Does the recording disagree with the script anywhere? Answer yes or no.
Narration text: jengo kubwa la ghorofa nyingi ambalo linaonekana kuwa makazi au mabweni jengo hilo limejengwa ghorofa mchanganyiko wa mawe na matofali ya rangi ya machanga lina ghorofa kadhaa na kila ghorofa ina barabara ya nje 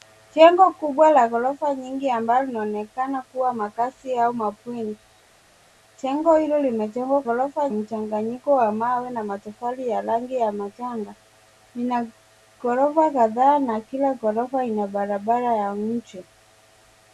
no